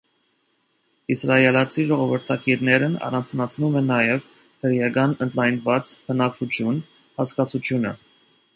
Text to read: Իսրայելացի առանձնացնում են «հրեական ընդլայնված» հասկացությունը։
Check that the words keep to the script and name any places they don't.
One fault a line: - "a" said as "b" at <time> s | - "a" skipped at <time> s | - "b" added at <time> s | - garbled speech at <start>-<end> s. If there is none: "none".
- "ժողովրդագիրներն" added at 1.9 s
- "նաև" added at 3.9 s
- "բնակչություն" added at 6.1 s